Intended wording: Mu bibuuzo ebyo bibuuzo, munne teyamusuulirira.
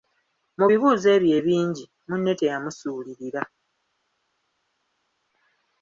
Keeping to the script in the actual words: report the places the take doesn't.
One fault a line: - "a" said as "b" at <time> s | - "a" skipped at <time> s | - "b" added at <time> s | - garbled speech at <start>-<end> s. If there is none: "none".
- "bibuuzo" said as "ebingi" at 1.4 s